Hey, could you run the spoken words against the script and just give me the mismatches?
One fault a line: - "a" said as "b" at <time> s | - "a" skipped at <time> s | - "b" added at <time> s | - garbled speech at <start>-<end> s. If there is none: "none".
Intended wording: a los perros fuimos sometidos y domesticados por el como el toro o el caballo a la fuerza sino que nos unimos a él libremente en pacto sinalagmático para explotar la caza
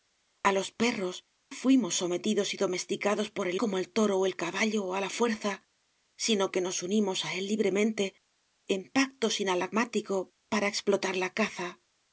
none